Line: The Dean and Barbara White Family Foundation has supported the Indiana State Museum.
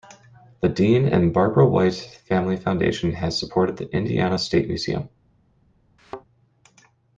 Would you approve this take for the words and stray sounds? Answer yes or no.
no